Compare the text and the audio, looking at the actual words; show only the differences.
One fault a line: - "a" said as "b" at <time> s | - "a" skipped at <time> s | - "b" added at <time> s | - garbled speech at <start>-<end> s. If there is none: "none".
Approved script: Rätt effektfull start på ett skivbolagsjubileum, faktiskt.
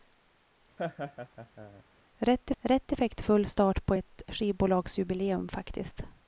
- "rätt" added at 2.6 s